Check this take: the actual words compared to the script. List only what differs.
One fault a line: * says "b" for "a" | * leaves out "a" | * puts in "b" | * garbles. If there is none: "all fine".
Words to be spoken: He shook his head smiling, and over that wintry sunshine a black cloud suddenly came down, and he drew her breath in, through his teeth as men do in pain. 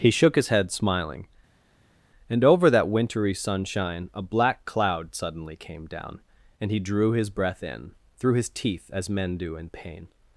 * says "his" for "her"